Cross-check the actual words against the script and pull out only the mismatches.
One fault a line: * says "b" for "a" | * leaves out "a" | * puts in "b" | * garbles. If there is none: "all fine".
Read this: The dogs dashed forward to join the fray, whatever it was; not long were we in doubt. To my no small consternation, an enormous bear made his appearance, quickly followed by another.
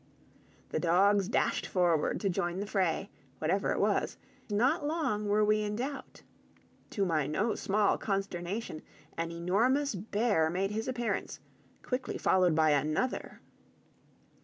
all fine